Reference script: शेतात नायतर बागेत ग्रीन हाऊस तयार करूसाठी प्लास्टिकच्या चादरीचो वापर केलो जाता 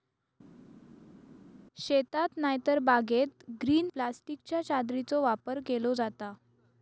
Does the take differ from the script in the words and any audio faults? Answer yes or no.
yes